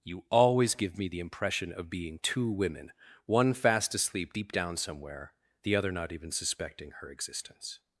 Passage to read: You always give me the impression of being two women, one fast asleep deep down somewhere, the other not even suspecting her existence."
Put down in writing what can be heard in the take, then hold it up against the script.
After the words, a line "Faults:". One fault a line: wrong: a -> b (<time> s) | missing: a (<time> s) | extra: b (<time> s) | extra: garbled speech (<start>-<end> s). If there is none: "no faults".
You always give me the impression of being two women, one fast asleep deep down somewhere, the other not even suspecting her existence."
Faults:
no faults